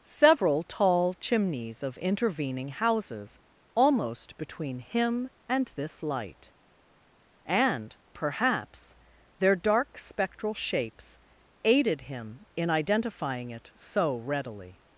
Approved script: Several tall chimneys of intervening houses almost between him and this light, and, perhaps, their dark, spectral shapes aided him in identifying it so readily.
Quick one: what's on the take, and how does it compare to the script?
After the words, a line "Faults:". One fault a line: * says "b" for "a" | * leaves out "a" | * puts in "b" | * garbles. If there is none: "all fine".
Several tall chimneys of intervening houses almost between him and this light, and, perhaps, their dark, spectral shapes aided him in identifying it so readily.
Faults:
all fine